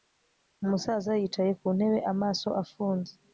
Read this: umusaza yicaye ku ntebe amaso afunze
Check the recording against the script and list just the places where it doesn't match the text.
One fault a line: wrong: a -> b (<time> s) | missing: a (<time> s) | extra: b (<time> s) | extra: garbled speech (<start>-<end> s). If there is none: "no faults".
no faults